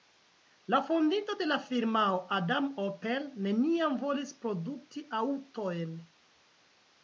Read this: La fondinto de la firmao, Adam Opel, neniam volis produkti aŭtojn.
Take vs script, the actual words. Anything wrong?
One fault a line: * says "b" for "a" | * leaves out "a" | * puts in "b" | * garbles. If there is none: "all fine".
all fine